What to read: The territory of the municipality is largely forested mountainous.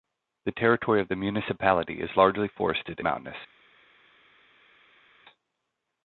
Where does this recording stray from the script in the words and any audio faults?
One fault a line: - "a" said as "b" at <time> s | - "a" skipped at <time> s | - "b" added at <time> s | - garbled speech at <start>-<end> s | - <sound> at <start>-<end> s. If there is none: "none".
none